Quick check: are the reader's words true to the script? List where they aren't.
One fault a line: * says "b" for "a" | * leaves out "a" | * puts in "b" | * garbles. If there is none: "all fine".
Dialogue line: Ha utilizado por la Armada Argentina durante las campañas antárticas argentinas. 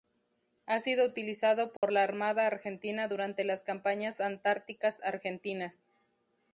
* puts in "sido"